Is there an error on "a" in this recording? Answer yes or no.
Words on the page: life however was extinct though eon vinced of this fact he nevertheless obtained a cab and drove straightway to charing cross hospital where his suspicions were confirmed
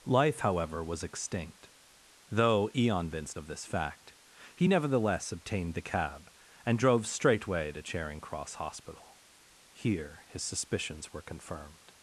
yes